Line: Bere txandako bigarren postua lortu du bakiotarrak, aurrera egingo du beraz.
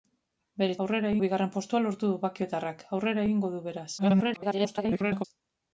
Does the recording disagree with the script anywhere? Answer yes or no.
yes